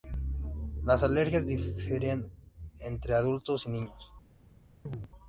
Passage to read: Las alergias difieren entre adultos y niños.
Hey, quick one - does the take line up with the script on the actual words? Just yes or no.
yes